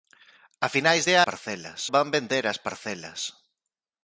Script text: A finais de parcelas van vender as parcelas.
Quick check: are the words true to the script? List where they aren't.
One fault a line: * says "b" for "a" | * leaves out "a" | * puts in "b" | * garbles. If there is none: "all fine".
all fine